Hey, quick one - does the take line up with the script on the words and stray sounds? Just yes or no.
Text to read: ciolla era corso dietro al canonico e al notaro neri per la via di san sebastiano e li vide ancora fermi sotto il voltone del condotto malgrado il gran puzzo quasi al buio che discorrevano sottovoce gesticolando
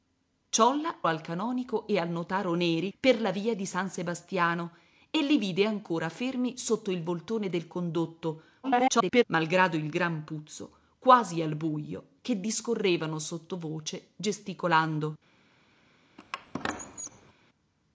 no